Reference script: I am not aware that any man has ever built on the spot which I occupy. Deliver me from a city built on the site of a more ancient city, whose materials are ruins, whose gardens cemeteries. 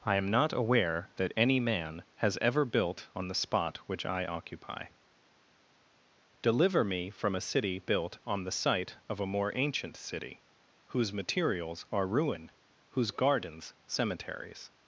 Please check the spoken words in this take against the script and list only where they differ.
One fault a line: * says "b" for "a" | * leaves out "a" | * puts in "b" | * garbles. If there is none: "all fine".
* says "ruin" for "ruins"